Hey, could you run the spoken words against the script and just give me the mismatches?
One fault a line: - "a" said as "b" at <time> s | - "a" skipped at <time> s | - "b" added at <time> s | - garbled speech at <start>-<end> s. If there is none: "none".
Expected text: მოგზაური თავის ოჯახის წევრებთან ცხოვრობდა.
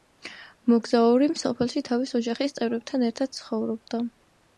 - "სოფელში" added at 1.4 s
- "ერთად" added at 3.1 s